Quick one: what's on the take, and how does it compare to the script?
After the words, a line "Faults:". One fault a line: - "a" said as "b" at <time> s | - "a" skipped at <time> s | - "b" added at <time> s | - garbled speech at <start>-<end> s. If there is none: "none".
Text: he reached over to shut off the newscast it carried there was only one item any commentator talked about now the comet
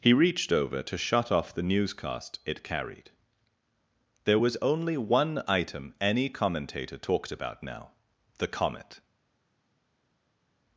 he reached over to shut off the newscast it carried there was only one item any commentator talked about now the comet
Faults:
none